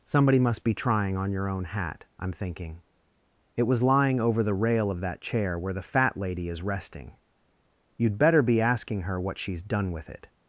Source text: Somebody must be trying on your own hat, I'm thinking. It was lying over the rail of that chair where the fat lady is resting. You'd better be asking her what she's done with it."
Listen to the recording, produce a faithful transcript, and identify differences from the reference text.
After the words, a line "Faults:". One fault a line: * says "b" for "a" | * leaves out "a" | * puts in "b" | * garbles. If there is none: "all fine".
Somebody must be trying on your own hat, I'm thinking. It was lying over the rail of that chair where the fat lady is resting. You'd better be asking her what she's done with it."
Faults:
all fine